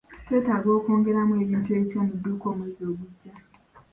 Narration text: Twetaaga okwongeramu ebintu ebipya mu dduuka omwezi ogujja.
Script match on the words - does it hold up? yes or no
yes